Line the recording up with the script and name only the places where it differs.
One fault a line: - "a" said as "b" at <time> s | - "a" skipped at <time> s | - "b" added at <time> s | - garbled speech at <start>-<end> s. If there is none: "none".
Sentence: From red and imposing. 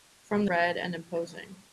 none